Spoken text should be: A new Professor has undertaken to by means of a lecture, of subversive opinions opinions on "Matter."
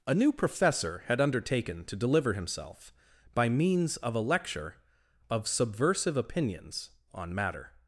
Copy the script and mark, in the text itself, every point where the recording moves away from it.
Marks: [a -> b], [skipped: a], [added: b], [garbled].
A new Professor [has -> had] undertaken to [added: deliver himself] by means of a lecture, of subversive opinions [skipped: opinions] on "Matter."